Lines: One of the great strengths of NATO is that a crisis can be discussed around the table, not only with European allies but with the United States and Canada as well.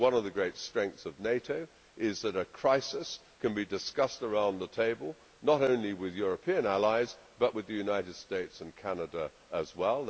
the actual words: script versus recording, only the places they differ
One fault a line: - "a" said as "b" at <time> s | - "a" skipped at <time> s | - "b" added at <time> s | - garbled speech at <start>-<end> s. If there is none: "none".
none